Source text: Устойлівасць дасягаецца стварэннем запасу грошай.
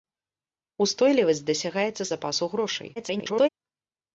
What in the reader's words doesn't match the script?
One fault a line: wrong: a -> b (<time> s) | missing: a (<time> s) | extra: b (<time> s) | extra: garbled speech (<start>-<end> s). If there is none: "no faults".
missing: стварэннем (2.0 s)
extra: garbled speech (3.0-3.5 s)